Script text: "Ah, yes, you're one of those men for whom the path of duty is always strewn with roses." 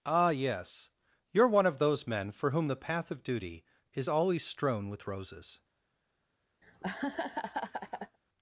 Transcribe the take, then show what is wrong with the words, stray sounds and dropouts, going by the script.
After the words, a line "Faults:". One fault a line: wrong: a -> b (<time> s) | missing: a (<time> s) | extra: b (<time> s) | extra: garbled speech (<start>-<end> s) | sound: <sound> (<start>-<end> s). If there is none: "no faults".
"Ah, yes, you're one of those men for whom the path of duty is always strewn with roses."
Faults:
sound: laugh (6.6-8.2 s)